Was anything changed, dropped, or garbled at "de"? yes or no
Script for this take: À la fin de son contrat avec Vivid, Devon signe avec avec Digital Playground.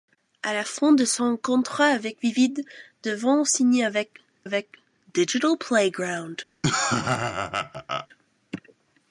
no